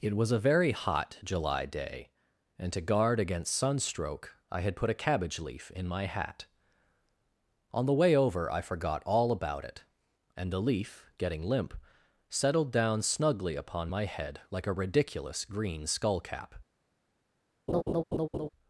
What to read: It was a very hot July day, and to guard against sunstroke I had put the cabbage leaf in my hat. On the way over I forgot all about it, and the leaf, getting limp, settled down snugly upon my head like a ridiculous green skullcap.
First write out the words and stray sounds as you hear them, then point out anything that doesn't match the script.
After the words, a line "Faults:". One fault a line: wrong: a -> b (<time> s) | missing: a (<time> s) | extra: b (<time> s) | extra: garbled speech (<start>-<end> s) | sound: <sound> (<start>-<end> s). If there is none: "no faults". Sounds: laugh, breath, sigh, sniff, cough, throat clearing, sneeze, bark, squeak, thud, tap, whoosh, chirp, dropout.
It was a very hot July day, and to guard against sunstroke I had put a cabbage leaf in my hat. On the way over I forgot all about it, and the leaf, getting limp, settled down snugly upon my head like a ridiculous green skullcap.
Faults:
wrong: the -> a (4.9 s)
sound: laugh (17.7-18.5 s)